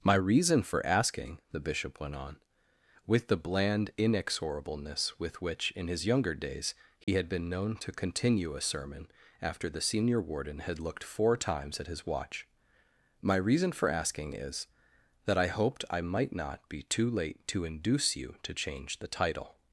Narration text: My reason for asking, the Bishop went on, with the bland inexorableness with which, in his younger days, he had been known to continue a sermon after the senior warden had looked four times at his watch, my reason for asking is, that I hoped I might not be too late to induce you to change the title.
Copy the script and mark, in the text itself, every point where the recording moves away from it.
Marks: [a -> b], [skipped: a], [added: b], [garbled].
My reason for asking, the Bishop went on, with the bland inexorableness with which, in his younger days, he had been known to continue a sermon after the senior warden had looked four times at his watch, my reason for asking is, that I hoped I might not be too late to induce you to change the title.